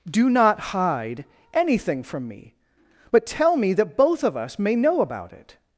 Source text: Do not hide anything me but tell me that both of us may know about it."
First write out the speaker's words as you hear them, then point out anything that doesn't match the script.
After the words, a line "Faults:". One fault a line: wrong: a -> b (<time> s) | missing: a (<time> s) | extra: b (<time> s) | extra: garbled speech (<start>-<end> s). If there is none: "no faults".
Do not hide anything from me but tell me that both of us may know about it."
Faults:
extra: from (2.0 s)